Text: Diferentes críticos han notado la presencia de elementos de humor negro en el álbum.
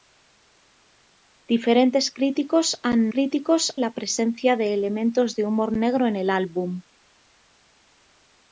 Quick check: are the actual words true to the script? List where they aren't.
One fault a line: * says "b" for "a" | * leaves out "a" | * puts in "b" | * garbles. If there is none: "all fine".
* says "críticos" for "notado"